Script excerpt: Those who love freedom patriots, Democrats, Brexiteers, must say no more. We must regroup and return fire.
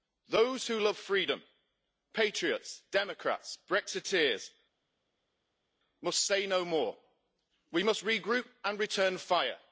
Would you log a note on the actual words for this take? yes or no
no